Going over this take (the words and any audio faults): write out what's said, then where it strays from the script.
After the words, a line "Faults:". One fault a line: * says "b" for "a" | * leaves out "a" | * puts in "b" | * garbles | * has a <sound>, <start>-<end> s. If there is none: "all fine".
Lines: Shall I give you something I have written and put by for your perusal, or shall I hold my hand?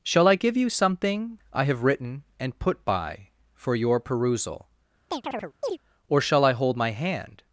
Shall I give you something I have written and put by for your perusal, or shall I hold my hand?
Faults:
* has a chirp, 5.1-5.8 s